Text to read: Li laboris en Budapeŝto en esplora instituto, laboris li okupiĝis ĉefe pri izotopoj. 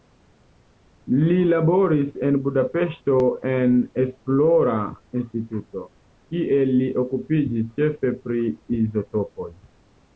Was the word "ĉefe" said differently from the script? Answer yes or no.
no